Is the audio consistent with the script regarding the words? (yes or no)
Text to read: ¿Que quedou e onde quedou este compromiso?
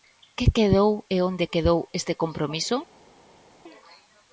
yes